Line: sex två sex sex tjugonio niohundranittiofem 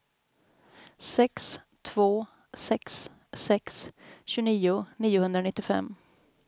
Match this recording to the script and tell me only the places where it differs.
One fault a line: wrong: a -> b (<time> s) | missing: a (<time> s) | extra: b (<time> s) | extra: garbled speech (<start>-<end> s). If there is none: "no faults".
no faults